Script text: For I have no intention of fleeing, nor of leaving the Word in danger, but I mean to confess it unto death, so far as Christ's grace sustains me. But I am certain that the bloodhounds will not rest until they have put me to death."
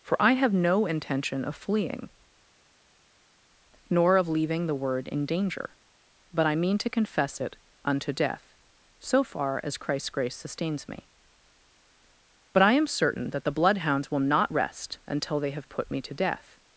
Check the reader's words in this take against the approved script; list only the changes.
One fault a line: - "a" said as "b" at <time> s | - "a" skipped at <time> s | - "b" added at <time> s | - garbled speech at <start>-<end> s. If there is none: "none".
none